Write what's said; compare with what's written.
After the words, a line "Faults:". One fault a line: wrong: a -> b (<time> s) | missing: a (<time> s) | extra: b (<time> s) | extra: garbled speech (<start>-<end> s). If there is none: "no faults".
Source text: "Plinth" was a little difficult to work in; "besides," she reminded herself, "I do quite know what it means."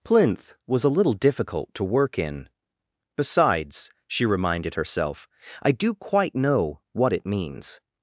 "Plinth" was a little difficult to work in; "besides," she reminded herself, "I do quite know what it means."
Faults:
no faults